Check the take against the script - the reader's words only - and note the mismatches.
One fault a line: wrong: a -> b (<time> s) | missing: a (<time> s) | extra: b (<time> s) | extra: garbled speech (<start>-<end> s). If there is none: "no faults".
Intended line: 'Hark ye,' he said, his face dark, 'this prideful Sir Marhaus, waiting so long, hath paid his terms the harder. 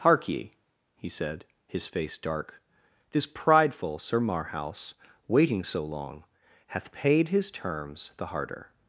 no faults